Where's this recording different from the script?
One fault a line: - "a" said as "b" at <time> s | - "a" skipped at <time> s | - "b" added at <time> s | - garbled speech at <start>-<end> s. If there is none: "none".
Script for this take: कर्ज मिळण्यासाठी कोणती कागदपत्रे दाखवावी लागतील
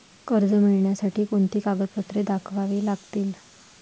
none